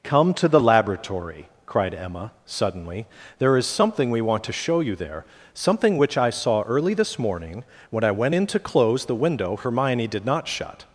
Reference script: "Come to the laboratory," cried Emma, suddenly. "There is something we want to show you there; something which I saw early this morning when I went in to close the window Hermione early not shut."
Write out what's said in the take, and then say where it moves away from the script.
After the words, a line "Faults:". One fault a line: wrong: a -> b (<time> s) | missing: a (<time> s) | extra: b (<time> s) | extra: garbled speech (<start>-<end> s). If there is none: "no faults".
"Come to the laboratory," cried Emma, suddenly. "There is something we want to show you there; something which I saw early this morning when I went in to close the window Hermione did not shut."
Faults:
wrong: early -> did (10.1 s)